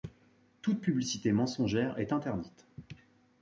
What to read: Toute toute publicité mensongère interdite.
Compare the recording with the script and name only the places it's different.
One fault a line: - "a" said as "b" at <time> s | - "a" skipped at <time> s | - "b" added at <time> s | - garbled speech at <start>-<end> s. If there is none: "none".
- "toute" skipped at 0.8 s
- "est" added at 2.0 s